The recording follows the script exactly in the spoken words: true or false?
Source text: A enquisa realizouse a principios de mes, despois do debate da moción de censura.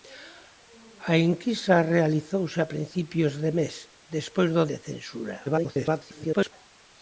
false